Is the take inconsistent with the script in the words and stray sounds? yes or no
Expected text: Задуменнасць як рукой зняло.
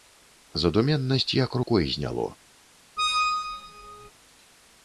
yes